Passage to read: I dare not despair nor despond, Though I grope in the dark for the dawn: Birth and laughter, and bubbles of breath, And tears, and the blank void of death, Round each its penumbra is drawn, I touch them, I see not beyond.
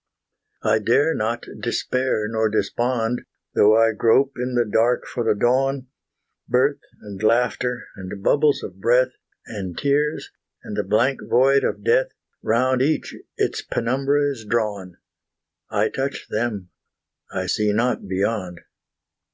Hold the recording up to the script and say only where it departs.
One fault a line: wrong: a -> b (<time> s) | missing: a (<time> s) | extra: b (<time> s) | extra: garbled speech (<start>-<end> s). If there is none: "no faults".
no faults